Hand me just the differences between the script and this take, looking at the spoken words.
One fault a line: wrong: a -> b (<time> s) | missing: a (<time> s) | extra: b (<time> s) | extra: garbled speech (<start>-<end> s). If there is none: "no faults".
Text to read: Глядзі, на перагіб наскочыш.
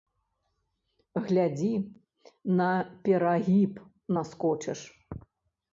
no faults